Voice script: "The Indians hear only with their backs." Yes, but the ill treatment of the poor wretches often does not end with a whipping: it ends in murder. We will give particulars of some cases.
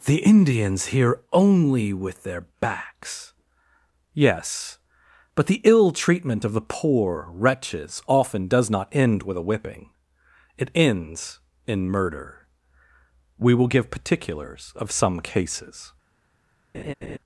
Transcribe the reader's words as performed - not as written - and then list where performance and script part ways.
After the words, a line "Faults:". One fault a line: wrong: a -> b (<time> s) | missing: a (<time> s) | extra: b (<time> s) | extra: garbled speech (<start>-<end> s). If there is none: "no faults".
"The Indians hear only with their backs." Yes, but the ill treatment of the poor wretches often does not end with a whipping: it ends in murder. We will give particulars of some cases.
Faults:
no faults